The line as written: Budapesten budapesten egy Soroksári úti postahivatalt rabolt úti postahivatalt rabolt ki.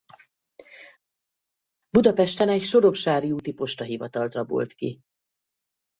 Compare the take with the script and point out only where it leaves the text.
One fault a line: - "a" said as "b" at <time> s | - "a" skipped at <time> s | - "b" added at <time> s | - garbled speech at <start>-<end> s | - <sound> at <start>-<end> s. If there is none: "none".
- "budapesten" skipped at 2.5 s
- "úti postahivatalt rabolt" skipped at 4.7 s